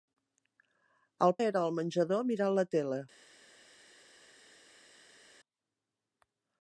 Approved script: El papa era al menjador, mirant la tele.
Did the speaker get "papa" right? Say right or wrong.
wrong